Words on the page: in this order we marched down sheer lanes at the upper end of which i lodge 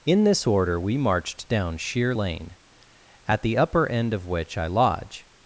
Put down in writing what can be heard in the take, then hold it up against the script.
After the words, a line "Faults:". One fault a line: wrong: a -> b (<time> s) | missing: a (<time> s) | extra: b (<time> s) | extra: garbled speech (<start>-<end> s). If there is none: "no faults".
in this order we marched down sheer lane at the upper end of which i lodge
Faults:
wrong: lanes -> lane (2.1 s)